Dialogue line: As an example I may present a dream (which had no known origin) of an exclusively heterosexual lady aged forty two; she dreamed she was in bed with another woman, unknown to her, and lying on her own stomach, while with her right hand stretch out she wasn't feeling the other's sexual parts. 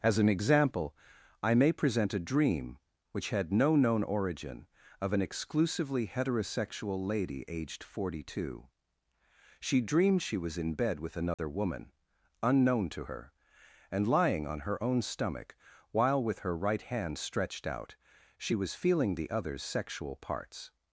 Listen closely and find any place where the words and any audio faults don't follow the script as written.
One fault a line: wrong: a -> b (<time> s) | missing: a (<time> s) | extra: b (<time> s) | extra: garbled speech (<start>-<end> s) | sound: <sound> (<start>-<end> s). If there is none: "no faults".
sound: dropout (11.3-11.4 s)
wrong: stretch -> stretched (17.2 s)
wrong: wasn't -> was (18.5 s)